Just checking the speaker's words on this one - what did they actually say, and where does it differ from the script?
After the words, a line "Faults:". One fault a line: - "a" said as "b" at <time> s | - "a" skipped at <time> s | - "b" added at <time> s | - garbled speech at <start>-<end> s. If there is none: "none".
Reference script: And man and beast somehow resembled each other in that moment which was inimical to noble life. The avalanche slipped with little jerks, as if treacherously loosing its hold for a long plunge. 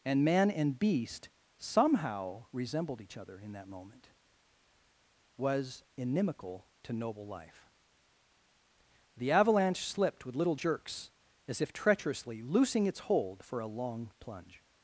And man and beast somehow resembled each other in that moment was inimical to noble life. The avalanche slipped with little jerks, as if treacherously loosing its hold for a long plunge.
Faults:
- "which" skipped at 4.1 s